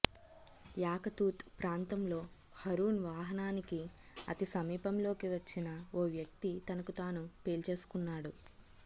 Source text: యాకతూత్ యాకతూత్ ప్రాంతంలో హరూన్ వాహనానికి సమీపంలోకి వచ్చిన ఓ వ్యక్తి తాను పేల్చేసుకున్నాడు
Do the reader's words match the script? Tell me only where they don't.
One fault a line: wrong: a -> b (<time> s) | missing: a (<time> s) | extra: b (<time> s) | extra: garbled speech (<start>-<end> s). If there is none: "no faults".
missing: యాకతూత్ (1.4 s)
extra: అతి (4.3 s)
extra: తనకు (6.7 s)